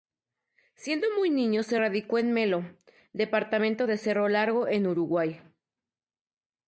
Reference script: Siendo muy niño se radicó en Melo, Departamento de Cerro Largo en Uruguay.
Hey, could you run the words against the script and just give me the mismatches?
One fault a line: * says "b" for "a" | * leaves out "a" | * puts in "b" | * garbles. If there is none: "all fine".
all fine